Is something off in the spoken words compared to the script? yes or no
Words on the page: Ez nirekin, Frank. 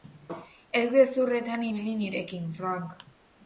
yes